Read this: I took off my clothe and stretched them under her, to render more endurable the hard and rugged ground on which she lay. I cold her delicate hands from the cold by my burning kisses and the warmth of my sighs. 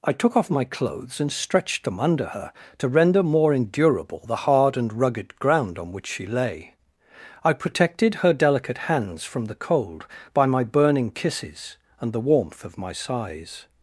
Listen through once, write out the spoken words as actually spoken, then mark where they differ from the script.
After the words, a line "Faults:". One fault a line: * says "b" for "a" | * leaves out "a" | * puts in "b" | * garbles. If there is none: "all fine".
I took off my clothes and stretched them under her, to render more endurable the hard and rugged ground on which she lay. I protected her delicate hands from the cold by my burning kisses and the warmth of my sighs.
Faults:
* says "clothes" for "clothe"
* says "protected" for "cold"